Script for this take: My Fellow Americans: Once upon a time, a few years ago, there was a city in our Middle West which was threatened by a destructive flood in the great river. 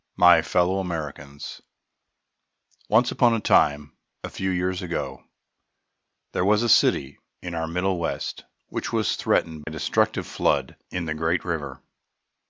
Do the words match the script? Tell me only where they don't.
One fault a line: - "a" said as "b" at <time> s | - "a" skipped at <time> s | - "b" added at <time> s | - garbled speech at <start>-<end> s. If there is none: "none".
- "by" skipped at 9.6 s